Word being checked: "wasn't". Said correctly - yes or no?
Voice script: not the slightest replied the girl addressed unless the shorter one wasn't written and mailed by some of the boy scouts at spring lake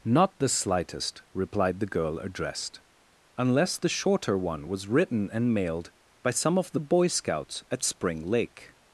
no